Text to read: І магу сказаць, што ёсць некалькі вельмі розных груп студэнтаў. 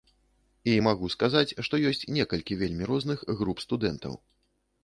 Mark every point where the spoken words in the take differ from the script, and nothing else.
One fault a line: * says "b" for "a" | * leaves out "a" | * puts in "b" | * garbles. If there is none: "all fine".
all fine